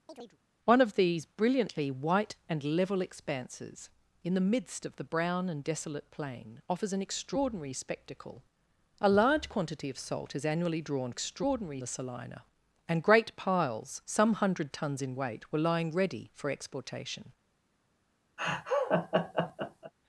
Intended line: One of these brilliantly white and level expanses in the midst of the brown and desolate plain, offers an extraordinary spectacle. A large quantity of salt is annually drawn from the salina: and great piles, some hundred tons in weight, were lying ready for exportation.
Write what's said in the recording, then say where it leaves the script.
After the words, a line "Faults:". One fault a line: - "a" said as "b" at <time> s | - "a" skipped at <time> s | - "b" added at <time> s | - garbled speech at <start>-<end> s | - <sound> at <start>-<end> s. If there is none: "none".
One of these brilliantly white and level expanses in the midst of the brown and desolate plain, offers an extraordinary spectacle. A large quantity of salt is annually drawn extraordinary the salina: and great piles, some hundred tons in weight, were lying ready for exportation.
Faults:
- chirp at 0.1-0.4 s
- "from" said as "extraordinary" at 11.1 s
- laugh at 18.4-19.9 s